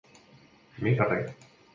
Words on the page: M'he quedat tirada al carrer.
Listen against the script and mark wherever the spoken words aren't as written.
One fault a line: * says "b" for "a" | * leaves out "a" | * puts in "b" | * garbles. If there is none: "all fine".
* leaves out "quedat tirada al"